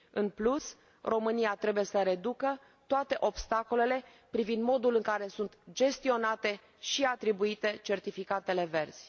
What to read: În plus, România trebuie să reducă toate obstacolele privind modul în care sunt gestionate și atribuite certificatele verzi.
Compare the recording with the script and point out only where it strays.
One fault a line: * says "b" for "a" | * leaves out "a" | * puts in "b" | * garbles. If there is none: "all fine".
all fine